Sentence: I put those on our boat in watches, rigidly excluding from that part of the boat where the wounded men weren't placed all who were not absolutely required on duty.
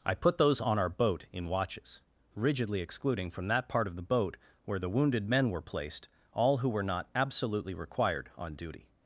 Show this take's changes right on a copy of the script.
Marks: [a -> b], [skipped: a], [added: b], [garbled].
I put those on our boat in watches, rigidly excluding from that part of the boat where the wounded men [weren't -> were] placed all who were not absolutely required on duty.